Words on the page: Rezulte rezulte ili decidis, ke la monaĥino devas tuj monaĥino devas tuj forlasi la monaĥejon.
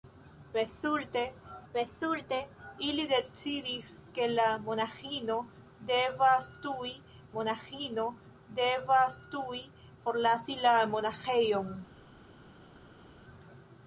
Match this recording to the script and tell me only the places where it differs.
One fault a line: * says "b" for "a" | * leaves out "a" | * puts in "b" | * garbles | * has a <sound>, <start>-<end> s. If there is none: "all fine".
all fine